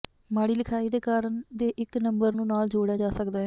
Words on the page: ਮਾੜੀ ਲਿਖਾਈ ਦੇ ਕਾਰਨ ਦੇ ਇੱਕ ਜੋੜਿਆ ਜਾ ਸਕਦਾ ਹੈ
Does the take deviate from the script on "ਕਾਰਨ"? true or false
false